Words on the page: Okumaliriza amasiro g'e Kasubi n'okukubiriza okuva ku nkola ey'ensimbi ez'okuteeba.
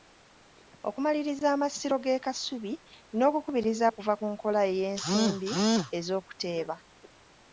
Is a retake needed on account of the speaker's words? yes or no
no